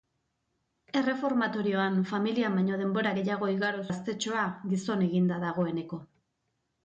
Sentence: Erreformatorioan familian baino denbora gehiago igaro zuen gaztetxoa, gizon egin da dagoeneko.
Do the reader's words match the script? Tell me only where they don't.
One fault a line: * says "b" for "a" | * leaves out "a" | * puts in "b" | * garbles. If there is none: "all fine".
* leaves out "zuen"